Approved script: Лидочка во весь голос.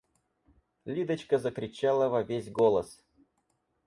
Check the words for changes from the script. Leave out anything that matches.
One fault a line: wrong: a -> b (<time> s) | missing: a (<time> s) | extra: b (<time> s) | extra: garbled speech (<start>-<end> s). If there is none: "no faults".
extra: закричала (1.4 s)